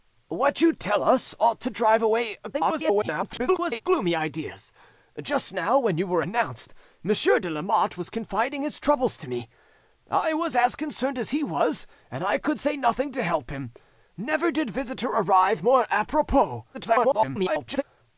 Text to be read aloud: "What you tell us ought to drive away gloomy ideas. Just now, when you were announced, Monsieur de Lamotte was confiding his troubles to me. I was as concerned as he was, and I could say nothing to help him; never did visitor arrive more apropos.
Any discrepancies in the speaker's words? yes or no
yes